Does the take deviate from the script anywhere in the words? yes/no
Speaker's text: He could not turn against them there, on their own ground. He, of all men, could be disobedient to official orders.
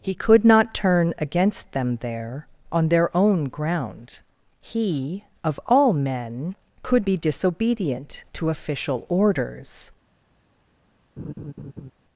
no